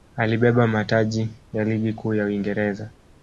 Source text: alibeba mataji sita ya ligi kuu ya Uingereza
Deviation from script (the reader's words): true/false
true